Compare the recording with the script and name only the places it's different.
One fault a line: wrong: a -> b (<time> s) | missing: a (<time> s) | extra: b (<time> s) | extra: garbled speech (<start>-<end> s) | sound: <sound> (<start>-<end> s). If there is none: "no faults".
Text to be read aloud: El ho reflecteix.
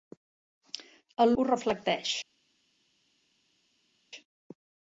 no faults